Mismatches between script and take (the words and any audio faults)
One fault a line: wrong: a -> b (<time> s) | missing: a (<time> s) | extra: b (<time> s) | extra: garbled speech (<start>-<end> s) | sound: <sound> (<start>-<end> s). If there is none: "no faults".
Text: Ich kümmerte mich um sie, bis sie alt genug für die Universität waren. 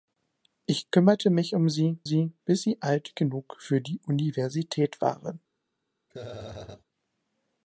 extra: sie (2.0 s)
sound: laugh (6.1-6.8 s)